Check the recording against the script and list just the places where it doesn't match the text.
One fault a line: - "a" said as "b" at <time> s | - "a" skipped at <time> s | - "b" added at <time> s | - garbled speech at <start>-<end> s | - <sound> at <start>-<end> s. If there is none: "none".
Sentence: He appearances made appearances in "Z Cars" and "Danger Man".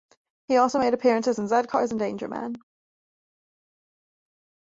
- "appearances" said as "also" at 0.6 s